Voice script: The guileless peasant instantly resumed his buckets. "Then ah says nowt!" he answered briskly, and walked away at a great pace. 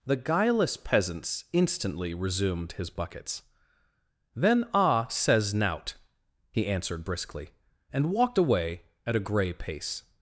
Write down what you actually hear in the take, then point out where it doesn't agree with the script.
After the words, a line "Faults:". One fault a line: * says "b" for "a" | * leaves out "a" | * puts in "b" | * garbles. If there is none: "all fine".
The guileless peasants instantly resumed his buckets. "Then ah says nowt!" he answered briskly, and walked away at a grey pace.
Faults:
* says "peasants" for "peasant"
* says "grey" for "great"